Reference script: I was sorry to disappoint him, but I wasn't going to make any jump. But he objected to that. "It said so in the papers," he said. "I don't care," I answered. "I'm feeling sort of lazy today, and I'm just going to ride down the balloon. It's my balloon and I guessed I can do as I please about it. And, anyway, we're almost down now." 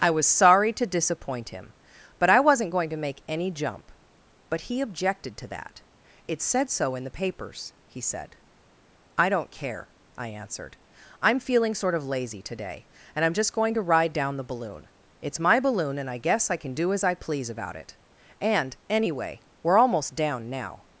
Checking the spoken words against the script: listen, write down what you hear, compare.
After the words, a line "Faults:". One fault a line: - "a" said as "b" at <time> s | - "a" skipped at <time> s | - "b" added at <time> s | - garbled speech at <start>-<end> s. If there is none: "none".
I was sorry to disappoint him, but I wasn't going to make any jump. But he objected to that. "It said so in the papers," he said. "I don't care," I answered. "I'm feeling sort of lazy today, and I'm just going to ride down the balloon. It's my balloon and I guess I can do as I please about it. And, anyway, we're almost down now."
Faults:
- "guessed" said as "guess" at 16.2 s